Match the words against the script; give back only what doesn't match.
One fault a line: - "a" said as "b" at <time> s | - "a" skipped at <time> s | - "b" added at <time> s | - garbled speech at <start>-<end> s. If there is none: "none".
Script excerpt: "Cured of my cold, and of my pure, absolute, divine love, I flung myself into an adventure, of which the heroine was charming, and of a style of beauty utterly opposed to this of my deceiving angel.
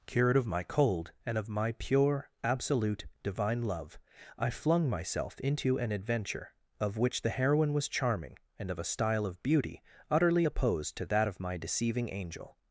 - "this" said as "that" at 11.1 s